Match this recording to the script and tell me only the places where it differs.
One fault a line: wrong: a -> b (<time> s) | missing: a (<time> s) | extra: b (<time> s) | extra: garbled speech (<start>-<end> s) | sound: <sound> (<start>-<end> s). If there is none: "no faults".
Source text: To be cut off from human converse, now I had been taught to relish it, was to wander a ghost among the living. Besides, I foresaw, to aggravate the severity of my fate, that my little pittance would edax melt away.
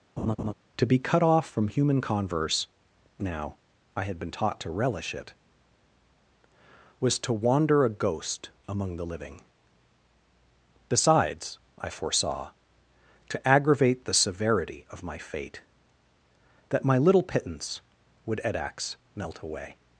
sound: laugh (0.2-0.5 s)